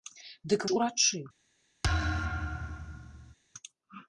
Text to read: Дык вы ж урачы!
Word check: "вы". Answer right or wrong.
wrong